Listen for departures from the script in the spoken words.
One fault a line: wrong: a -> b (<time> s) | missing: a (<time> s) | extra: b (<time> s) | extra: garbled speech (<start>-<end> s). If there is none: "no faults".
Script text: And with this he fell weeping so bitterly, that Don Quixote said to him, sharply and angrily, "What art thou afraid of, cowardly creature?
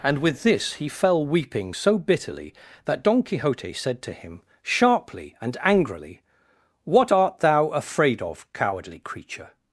no faults